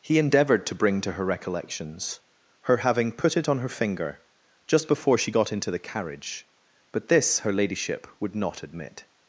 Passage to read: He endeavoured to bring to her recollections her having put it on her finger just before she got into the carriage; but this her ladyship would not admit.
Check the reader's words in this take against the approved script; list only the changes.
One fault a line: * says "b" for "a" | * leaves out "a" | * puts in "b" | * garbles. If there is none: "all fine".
all fine